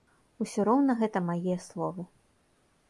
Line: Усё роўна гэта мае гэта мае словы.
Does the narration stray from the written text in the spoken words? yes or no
yes